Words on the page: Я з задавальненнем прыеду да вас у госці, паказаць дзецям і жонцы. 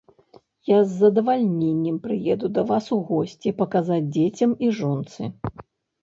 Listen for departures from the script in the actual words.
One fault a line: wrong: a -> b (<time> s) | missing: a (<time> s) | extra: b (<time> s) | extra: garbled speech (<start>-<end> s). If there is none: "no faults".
no faults